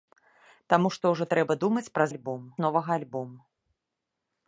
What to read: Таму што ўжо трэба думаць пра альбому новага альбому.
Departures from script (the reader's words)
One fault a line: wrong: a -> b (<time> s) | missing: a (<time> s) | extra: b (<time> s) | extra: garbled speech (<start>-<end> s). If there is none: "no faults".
no faults